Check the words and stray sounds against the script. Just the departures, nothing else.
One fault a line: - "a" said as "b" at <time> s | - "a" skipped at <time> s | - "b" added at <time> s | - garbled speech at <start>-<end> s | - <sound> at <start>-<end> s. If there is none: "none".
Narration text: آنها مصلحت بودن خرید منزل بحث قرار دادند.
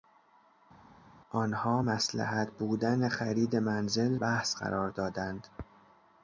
none